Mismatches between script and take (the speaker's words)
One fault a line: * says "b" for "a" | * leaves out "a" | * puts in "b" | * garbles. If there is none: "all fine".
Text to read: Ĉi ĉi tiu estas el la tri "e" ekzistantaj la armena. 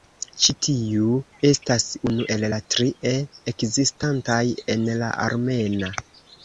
* leaves out "ĉi"
* puts in "unu"
* puts in "en"